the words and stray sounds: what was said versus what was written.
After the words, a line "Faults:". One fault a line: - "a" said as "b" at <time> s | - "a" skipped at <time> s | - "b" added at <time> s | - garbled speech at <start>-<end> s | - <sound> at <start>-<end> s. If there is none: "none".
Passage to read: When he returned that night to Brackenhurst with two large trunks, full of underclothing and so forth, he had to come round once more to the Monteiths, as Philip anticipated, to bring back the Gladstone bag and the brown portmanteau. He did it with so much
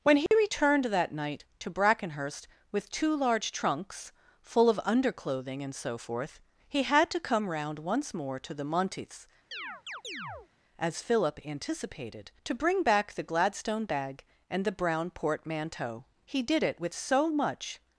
When he returned that night to Brackenhurst with two large trunks, full of underclothing and so forth, he had to come round once more to the Monteiths, as Philip anticipated, to bring back the Gladstone bag and the brown portmanteau. He did it with so much
Faults:
- dropout at 0.3-0.3 s
- chirp at 9.5-10.5 s